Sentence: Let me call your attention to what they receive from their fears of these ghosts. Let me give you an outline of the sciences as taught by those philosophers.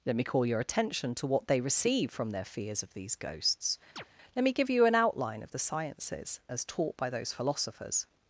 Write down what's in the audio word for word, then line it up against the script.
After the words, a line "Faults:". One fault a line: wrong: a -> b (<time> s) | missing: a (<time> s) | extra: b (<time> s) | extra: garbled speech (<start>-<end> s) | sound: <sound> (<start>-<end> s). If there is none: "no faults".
Let me call your attention to what they receive from their fears of these ghosts. Let me give you an outline of the sciences as taught by those philosophers.
Faults:
sound: chirp (4.0-4.0 s)